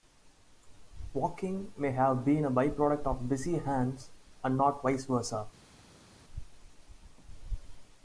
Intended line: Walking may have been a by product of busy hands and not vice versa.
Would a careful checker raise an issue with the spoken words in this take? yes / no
no